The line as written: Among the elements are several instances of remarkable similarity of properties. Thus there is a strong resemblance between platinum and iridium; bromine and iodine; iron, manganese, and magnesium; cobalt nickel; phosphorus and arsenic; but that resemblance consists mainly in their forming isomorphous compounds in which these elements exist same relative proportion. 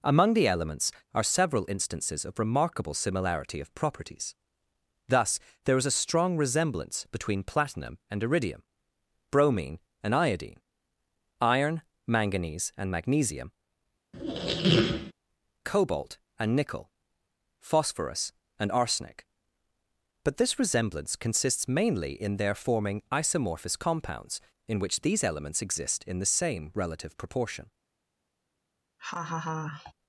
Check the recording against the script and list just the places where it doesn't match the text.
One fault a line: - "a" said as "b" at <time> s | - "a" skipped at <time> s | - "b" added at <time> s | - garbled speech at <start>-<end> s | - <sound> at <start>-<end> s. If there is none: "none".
- squeak at 14.1-15.1 s
- "and" added at 16.4 s
- "that" said as "this" at 20.4 s
- "in the" added at 26.1 s
- laugh at 29.0-29.9 s